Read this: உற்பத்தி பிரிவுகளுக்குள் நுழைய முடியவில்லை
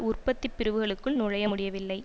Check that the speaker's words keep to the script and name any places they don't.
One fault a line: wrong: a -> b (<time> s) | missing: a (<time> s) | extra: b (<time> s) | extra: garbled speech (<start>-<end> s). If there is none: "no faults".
no faults